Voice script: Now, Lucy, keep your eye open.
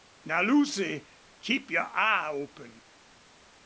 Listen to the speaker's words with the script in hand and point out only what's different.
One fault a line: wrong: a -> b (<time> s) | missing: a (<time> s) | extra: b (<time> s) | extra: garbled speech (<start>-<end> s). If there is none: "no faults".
no faults